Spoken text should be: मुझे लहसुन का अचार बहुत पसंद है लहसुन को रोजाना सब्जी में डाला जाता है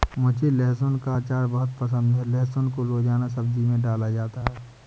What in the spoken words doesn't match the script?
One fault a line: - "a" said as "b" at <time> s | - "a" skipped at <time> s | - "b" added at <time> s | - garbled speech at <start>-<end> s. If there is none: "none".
none